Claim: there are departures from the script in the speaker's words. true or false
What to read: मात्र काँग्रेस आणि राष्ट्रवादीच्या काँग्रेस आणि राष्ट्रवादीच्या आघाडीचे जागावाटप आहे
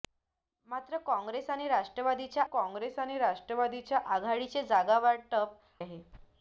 false